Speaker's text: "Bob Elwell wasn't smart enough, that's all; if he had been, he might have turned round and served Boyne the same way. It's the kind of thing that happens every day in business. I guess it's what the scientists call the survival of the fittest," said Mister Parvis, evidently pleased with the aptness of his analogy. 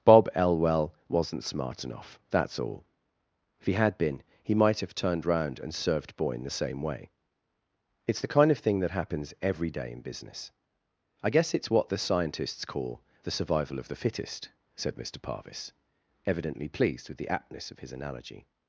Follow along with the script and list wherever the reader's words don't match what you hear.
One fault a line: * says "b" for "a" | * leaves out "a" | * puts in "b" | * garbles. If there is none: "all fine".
all fine